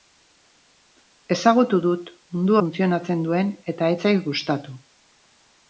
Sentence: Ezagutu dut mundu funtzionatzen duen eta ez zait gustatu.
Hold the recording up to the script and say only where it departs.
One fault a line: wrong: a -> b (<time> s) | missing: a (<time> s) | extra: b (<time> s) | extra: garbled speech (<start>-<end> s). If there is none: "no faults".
no faults